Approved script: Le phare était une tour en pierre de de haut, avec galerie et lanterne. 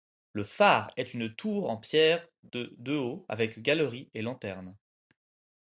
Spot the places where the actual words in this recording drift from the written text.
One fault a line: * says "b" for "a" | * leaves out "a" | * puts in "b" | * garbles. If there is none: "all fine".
* says "est" for "était"